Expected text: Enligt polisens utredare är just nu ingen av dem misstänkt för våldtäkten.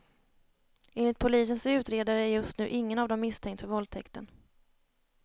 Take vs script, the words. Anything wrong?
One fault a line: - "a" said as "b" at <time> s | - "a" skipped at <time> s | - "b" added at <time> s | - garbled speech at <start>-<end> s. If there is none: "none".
none